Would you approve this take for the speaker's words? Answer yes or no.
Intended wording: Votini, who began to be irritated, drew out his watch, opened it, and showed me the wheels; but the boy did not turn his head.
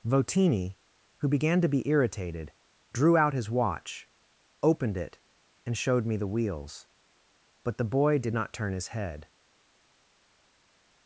yes